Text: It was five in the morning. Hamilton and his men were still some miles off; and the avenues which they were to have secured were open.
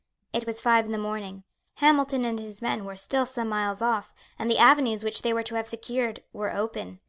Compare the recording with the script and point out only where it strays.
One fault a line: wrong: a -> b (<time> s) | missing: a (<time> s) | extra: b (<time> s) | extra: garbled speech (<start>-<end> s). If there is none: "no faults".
no faults